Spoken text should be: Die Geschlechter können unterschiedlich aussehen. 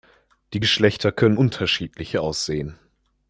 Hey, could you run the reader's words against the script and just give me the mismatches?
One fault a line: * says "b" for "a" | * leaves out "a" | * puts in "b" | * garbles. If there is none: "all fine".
all fine